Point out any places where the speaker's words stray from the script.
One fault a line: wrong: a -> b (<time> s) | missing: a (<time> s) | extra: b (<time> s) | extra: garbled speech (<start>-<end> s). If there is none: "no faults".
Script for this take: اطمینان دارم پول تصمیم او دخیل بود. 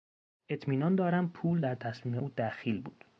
extra: در (1.6 s)